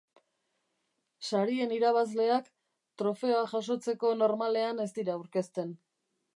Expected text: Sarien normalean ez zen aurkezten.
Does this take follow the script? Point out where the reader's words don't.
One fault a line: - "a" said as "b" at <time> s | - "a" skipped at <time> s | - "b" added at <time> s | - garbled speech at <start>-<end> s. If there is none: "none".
- "irabazleak trofeoa jasotzeko" added at 1.8 s
- "zen" said as "dira" at 5.0 s